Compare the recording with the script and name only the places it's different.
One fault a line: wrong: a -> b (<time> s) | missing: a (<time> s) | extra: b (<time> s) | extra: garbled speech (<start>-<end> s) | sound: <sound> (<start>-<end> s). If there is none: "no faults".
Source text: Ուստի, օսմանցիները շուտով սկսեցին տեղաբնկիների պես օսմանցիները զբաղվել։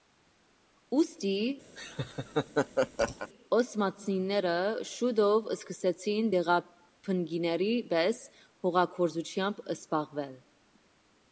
sound: laugh (1.7-3.3 s)
wrong: օսմանցիները -> հողագործությամբ (8.7 s)